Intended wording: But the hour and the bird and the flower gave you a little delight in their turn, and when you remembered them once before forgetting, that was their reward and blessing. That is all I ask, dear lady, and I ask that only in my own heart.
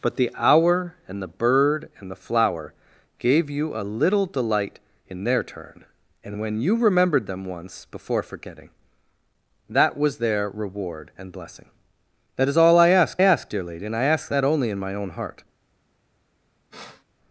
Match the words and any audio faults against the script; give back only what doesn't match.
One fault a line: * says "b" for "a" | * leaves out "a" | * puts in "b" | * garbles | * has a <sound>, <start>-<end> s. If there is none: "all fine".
* puts in "ask"
* has a sniff, 16.7-17.0 s